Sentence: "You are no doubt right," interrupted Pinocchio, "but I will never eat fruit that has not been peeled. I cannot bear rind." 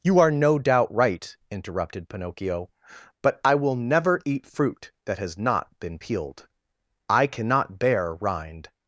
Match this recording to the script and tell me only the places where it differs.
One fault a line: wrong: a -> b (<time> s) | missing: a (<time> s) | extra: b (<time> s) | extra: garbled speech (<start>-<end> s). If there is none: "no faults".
no faults